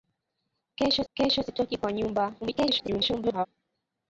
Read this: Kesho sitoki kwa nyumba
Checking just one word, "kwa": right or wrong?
right